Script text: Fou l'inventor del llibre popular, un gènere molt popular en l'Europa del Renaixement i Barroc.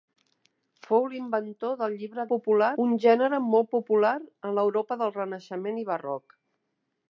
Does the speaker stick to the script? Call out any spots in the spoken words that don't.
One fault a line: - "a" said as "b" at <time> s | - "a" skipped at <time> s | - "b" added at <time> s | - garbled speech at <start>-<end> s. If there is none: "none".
none